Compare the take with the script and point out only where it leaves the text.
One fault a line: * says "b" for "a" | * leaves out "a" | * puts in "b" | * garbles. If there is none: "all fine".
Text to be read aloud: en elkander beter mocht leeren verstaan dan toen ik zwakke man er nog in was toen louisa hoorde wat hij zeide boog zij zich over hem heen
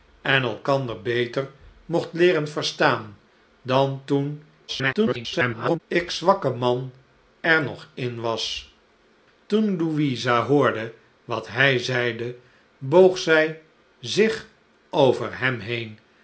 * garbles